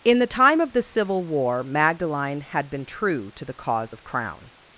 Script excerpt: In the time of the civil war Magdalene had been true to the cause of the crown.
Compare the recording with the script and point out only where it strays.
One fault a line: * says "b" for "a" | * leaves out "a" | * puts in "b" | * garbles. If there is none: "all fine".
* leaves out "the"